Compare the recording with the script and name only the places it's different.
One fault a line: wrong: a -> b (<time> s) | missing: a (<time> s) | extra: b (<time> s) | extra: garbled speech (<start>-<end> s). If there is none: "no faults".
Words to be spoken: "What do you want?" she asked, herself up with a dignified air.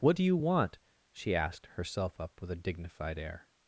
no faults